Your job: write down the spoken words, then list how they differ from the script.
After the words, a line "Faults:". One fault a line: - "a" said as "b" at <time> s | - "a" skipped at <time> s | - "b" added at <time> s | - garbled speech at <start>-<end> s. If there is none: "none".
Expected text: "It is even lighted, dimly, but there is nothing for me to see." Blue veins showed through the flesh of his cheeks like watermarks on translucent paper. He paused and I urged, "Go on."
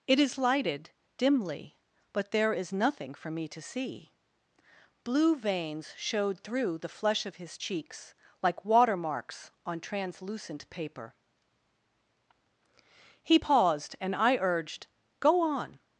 "It is lighted, dimly, but there is nothing for me to see." Blue veins showed through the flesh of his cheeks like watermarks on translucent paper. He paused and I urged, "Go on."
Faults:
- "even" skipped at 0.4 s